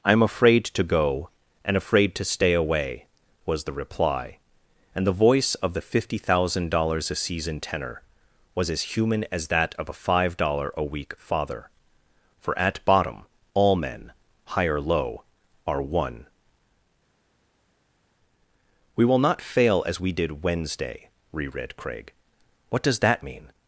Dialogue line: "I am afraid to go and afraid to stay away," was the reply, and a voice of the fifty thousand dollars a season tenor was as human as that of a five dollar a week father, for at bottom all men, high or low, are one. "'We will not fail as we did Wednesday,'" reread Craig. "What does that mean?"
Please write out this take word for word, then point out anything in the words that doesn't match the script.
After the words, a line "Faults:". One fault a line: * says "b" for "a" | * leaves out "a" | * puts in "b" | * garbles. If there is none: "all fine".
"I am afraid to go and afraid to stay away," was the reply, and the voice of the fifty thousand dollars a season tenor was as human as that of a five dollar a week father, for at bottom all men, high or low, are one. "'We will not fail as we did Wednesday,'" reread Craig. "What does that mean?"
Faults:
* says "the" for "a"